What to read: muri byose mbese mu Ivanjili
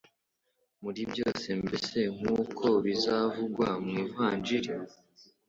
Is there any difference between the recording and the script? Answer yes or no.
yes